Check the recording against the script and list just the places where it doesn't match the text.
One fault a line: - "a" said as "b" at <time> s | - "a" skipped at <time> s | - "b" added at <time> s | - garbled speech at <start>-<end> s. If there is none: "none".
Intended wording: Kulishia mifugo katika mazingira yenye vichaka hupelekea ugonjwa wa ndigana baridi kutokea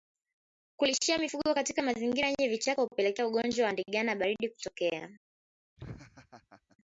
none